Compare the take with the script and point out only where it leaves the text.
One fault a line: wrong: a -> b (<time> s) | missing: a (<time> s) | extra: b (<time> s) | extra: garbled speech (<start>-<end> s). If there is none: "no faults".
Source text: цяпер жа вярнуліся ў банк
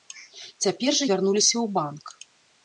no faults